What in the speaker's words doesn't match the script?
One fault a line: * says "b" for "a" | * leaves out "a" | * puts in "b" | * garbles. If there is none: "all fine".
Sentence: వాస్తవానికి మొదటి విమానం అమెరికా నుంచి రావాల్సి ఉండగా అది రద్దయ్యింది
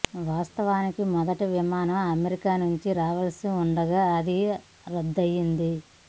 all fine